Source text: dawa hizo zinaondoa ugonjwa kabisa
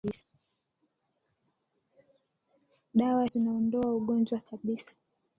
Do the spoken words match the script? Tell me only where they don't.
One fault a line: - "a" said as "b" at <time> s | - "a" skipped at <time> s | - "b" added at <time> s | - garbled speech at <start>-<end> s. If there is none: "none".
- "hizo" skipped at 3.2 s